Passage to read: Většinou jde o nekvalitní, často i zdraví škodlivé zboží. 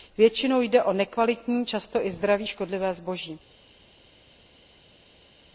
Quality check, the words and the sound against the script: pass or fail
pass